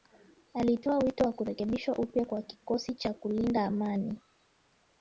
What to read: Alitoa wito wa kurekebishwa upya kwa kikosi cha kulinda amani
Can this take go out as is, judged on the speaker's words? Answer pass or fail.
pass